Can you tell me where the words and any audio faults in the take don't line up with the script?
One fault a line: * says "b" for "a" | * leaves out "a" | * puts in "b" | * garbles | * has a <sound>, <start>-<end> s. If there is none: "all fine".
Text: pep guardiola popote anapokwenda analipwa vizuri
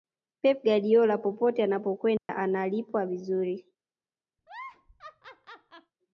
* has a dropout, 2.2-2.3 s
* has a laugh, 4.4-5.9 s